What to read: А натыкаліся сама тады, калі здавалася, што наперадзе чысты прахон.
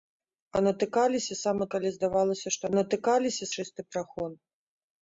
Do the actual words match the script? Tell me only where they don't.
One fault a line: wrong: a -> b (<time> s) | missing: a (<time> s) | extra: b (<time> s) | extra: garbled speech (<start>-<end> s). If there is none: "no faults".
missing: тады (1.7 s)
wrong: наперадзе -> натыкаліся (2.8 s)